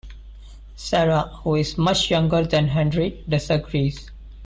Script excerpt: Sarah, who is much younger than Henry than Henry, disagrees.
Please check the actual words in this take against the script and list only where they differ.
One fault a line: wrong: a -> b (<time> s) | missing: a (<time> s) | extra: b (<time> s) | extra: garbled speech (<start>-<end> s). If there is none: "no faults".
missing: than Henry (3.2 s)